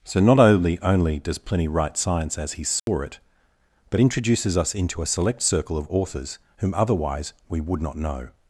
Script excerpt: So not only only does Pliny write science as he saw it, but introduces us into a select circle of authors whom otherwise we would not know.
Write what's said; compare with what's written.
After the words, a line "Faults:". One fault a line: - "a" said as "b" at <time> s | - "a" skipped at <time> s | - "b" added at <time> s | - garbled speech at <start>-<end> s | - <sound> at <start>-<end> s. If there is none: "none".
So not only only does Pliny write science as he saw it, but introduces us into a select circle of authors whom otherwise we would not know.
Faults:
- dropout at 2.8-2.9 s